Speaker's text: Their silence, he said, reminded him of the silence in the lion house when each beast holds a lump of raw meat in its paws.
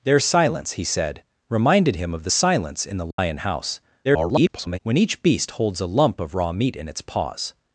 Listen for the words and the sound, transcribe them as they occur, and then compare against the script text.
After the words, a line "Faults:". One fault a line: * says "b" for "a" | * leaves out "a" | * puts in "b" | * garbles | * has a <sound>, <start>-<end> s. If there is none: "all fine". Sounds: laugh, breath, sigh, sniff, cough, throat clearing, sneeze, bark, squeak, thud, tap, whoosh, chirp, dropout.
Their silence, he said, reminded him of the silence in the lion house [garbled] when each beast holds a lump of raw meat in its paws.
Faults:
* has a dropout, 3.1-3.2 s
* garbles